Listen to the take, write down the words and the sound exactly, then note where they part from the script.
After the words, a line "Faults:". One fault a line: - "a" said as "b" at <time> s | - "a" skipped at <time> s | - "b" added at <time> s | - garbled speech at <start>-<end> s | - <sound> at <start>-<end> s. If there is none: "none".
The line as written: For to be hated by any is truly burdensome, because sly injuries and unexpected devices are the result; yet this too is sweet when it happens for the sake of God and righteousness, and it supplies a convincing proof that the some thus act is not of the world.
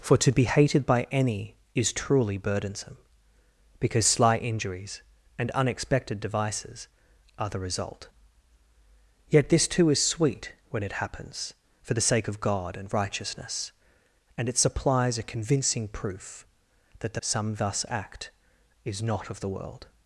For to be hated by any is truly burdensome, because sly injuries and unexpected devices are the result; yet this too is sweet when it happens for the sake of God and righteousness, and it supplies a convincing proof that the some thus act is not of the world.
Faults:
none